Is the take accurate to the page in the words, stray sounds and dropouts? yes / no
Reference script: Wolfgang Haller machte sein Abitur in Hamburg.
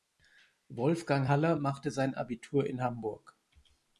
yes